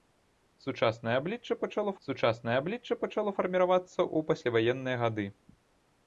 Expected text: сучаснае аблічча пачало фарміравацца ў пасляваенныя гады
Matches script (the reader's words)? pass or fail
fail